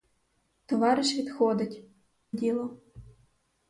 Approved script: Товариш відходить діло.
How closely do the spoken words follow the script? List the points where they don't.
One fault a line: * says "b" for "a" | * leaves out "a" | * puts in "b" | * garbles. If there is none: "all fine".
all fine